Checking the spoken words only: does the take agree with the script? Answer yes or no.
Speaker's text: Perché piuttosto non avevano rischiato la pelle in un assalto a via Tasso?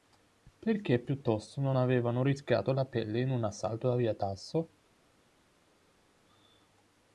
yes